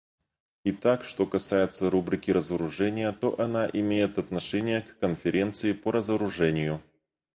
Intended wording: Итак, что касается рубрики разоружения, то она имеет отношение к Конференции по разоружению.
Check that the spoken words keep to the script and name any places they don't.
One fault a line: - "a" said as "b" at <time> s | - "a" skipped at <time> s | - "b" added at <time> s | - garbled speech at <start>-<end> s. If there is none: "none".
none